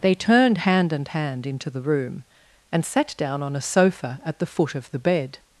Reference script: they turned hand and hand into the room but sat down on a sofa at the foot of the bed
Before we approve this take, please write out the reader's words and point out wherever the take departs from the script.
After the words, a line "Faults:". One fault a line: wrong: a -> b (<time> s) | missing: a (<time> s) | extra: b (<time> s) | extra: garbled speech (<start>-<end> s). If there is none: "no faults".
they turned hand and hand into the room and sat down on a sofa at the foot of the bed
Faults:
wrong: but -> and (2.7 s)